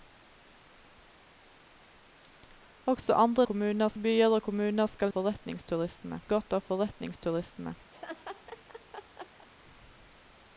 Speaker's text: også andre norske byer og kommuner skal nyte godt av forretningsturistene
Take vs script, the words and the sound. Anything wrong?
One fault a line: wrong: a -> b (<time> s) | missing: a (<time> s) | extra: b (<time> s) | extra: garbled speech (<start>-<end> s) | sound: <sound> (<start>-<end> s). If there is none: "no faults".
wrong: norske -> kommuner (3.5 s)
wrong: nyte -> forretningsturistene (5.2 s)
sound: laugh (7.9-9.5 s)